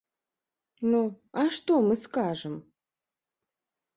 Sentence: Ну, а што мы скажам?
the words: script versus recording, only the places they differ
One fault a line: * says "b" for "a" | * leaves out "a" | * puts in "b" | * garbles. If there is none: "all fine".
all fine